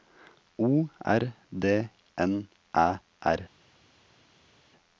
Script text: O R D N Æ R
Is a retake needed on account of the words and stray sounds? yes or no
no